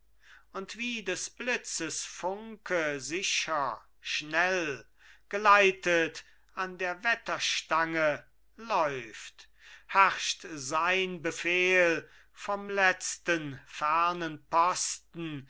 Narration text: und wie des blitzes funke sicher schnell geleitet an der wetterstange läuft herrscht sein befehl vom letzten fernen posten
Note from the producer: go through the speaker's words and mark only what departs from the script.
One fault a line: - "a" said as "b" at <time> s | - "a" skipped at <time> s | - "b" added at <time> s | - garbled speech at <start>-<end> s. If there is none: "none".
none